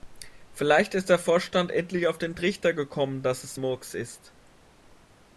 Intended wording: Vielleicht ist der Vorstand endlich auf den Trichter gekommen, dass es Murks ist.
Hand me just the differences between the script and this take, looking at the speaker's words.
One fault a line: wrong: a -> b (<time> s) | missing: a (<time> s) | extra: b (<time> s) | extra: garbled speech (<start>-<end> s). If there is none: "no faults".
no faults